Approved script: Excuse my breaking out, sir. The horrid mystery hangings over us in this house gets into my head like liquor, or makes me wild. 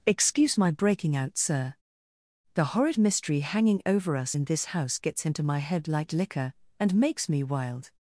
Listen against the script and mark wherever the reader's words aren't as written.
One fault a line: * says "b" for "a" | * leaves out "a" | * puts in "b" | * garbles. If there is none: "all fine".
* says "hanging" for "hangings"
* says "and" for "or"